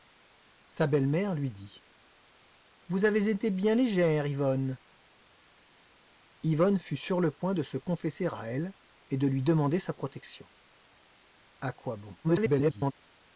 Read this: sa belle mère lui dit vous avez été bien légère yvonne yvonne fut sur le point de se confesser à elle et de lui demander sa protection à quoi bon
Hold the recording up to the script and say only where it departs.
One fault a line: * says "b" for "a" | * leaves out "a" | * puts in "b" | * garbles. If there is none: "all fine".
* garbles